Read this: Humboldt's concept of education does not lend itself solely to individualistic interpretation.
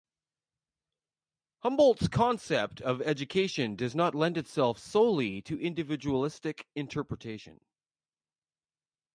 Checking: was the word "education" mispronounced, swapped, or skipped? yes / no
no